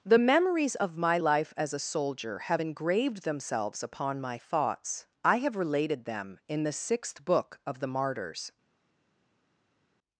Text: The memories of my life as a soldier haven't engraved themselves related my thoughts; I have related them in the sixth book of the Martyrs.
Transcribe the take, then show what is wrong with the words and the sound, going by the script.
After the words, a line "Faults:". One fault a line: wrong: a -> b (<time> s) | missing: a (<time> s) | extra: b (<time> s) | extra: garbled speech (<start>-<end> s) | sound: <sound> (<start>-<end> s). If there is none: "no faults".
The memories of my life as a soldier have engraved themselves upon my thoughts; I have related them in the sixth book of the Martyrs.
Faults:
wrong: haven't -> have (2.4 s)
wrong: related -> upon (3.8 s)